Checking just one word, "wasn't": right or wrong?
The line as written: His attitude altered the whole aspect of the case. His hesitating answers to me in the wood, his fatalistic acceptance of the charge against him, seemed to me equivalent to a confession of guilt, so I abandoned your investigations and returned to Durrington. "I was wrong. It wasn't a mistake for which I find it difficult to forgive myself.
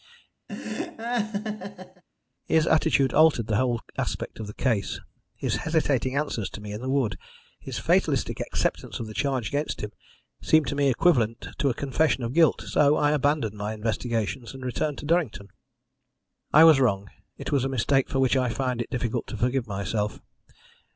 wrong